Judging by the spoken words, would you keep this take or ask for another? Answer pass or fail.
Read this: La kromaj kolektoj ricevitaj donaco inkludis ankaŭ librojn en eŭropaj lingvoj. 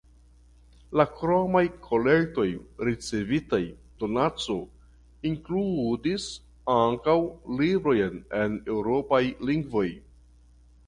pass